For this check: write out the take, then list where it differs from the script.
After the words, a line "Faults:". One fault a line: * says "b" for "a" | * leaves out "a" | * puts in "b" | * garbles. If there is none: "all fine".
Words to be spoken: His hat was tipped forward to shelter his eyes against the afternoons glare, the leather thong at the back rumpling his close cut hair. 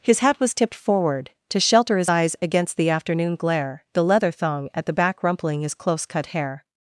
His hat was tipped forward to shelter his eyes against the afternoon glare, the leather thong at the back rumpling his close cut hair.
Faults:
* says "afternoon" for "afternoons"